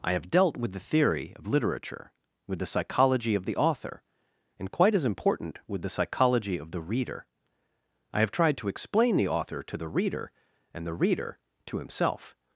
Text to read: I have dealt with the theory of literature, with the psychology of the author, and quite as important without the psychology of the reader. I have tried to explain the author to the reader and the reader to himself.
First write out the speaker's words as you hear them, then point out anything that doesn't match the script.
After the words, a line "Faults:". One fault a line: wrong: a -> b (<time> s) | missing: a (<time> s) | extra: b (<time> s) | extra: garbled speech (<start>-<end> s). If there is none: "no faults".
I have dealt with the theory of literature, with the psychology of the author, and quite as important with the psychology of the reader. I have tried to explain the author to the reader and the reader to himself.
Faults:
wrong: without -> with (5.7 s)